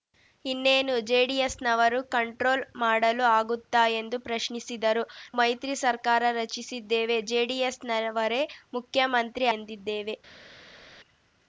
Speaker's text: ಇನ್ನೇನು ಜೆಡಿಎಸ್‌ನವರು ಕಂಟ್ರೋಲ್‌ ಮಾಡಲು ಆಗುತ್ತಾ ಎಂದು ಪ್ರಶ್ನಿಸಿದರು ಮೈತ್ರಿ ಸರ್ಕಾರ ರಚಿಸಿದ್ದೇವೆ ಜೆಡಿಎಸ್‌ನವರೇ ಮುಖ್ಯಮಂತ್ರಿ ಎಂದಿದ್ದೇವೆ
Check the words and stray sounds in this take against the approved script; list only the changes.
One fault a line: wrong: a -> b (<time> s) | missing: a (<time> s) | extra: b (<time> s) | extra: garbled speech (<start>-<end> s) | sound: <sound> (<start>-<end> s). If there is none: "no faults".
no faults